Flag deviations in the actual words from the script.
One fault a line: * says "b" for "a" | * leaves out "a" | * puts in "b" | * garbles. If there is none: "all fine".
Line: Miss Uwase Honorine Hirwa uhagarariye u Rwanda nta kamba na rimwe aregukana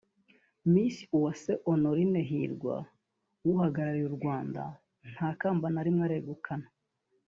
all fine